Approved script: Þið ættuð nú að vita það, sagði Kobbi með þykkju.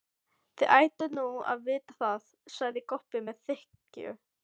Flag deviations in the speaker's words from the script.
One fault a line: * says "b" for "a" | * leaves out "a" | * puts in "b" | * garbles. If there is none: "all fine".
all fine